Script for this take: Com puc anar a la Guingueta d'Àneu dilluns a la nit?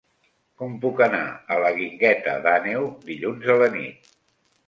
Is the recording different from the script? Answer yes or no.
no